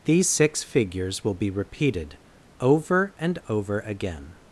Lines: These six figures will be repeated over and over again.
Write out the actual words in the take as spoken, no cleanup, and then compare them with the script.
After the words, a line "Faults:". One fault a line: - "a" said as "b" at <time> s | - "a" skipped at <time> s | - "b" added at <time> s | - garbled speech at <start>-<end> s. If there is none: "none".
These six figures will be repeated over and over again.
Faults:
none